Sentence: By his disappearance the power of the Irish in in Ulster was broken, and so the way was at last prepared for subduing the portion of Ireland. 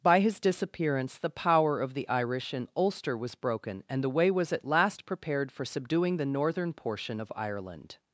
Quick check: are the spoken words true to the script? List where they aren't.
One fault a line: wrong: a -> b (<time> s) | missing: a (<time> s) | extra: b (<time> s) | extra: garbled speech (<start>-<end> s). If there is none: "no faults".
missing: in (2.7 s)
missing: so (4.0 s)
extra: northern (6.2 s)